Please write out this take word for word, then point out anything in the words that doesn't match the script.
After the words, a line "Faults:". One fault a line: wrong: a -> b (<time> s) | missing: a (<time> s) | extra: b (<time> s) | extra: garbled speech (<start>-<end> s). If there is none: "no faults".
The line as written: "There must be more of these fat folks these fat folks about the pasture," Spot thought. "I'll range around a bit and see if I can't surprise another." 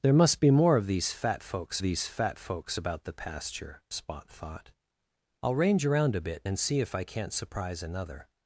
"There must be more of these fat folks these fat folks about the pasture," Spot thought. "I'll range around a bit and see if I can't surprise another."
Faults:
no faults